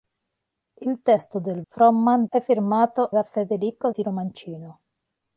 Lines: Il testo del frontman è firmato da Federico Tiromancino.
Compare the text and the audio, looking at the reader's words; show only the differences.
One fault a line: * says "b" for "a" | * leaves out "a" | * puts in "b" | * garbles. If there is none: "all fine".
all fine